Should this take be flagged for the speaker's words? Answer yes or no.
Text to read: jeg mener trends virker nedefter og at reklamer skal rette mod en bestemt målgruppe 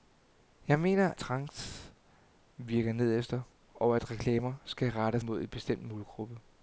no